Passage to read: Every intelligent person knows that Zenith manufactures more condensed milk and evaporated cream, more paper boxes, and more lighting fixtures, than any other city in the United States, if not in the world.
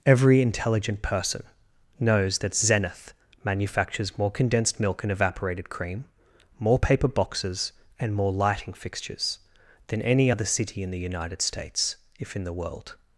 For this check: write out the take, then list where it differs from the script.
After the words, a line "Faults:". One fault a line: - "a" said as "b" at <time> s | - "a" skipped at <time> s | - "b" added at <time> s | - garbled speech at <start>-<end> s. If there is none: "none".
Every intelligent person knows that Zenith manufactures more condensed milk and evaporated cream, more paper boxes, and more lighting fixtures, than any other city in the United States, if in the world.
Faults:
- "not" skipped at 12.4 s